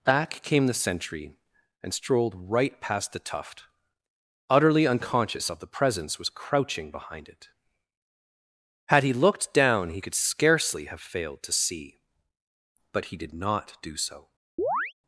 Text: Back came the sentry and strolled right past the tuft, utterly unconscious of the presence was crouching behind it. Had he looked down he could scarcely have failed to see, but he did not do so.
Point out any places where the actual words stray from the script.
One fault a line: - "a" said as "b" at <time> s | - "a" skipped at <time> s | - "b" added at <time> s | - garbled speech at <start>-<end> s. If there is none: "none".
none